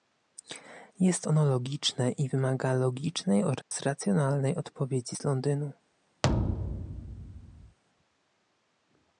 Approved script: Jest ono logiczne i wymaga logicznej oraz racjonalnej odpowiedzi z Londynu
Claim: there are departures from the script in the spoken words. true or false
false